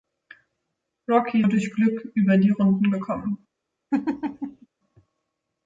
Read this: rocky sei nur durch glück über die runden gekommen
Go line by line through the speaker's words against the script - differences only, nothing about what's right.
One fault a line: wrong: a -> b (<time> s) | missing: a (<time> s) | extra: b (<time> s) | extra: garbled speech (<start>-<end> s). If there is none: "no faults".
missing: sei nur (1.4 s)